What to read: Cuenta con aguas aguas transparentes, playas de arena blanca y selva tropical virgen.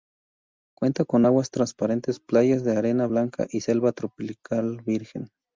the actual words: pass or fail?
fail